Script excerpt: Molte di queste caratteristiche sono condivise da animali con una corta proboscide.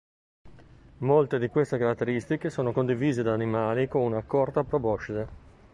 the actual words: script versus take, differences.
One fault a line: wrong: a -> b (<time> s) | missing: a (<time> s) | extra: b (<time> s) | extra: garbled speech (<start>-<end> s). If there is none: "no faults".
no faults